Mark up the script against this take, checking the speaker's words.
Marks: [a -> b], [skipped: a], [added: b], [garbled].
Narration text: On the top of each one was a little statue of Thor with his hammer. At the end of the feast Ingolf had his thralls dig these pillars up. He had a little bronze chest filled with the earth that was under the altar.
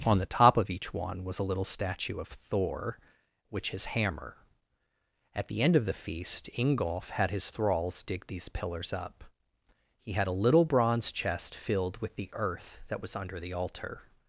On the top of each one was a little statue of Thor [with -> which] his hammer. At the end of the feast Ingolf had his thralls dig these pillars up. He had a little bronze chest filled with the earth that was under the altar.